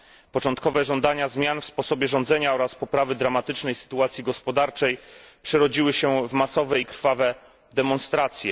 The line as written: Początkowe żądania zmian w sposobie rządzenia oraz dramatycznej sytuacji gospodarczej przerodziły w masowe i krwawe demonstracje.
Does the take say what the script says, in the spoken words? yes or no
no